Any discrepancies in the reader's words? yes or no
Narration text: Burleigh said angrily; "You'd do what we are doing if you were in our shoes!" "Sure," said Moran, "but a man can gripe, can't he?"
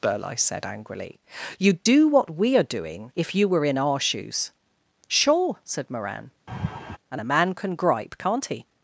yes